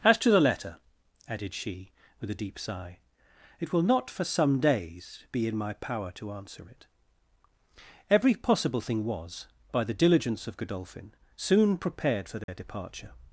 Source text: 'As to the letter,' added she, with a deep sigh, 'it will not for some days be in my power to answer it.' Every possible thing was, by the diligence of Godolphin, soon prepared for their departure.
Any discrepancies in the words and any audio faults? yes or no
yes